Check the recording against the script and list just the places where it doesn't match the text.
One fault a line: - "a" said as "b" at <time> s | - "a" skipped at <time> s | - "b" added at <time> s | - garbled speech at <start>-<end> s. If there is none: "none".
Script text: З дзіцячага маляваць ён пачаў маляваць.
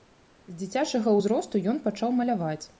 - "маляваць" said as "ўзросту" at 1.2 s